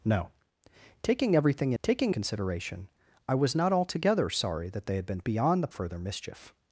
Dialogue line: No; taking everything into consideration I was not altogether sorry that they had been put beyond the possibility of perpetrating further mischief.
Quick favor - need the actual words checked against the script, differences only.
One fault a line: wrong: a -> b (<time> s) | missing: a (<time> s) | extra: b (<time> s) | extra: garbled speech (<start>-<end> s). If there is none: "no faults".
wrong: into -> taking (1.8 s)
missing: put (5.2 s)
missing: possibility of perpetrating (5.7 s)